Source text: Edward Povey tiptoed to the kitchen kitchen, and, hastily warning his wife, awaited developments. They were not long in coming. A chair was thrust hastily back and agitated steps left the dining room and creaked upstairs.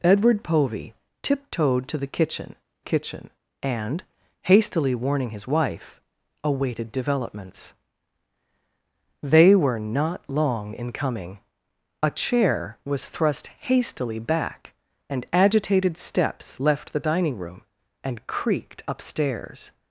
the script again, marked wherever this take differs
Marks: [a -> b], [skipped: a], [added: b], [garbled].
Edward Povey tiptoed to the kitchen kitchen, and, hastily warning his wife, awaited developments. They were not long in coming. A chair was thrust hastily back and agitated steps left the dining room and creaked upstairs.